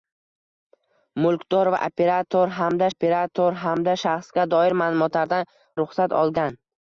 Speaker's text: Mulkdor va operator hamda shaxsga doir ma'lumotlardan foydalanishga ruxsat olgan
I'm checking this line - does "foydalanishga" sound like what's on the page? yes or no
no